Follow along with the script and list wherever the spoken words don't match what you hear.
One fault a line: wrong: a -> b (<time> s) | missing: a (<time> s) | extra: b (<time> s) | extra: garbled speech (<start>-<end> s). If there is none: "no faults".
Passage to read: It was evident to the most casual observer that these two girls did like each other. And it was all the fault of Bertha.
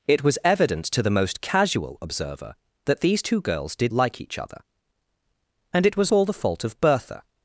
no faults